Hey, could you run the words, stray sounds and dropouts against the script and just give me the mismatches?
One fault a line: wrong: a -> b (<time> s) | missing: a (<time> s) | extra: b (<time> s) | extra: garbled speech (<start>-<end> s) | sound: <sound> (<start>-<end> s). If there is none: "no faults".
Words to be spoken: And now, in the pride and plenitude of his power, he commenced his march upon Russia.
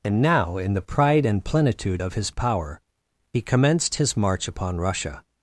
no faults